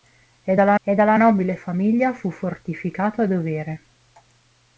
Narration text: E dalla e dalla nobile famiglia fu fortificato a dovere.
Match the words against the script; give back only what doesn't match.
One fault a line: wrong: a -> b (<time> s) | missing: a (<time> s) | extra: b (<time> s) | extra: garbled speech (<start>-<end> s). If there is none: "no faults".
no faults